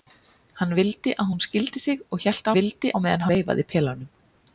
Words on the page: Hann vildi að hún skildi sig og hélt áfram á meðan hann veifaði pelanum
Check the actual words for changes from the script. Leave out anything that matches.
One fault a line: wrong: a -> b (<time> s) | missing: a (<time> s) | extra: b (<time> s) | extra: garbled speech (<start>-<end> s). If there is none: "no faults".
wrong: áfram -> vildi (2.6 s)
missing: hann (3.3 s)